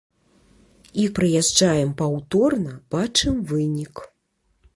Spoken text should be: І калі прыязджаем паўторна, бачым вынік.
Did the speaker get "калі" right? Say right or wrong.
wrong